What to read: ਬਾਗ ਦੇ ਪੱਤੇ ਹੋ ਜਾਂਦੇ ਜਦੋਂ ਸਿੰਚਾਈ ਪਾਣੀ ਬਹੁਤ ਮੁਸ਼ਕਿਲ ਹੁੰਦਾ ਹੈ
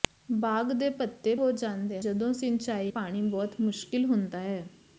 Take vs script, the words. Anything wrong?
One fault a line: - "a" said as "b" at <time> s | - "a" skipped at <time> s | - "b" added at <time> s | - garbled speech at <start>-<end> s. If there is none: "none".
none